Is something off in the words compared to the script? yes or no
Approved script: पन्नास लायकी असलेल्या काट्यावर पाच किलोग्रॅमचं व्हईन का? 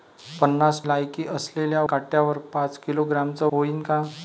no